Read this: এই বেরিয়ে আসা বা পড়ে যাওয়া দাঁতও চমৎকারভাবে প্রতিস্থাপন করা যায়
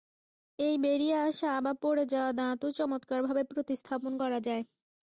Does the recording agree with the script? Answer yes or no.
yes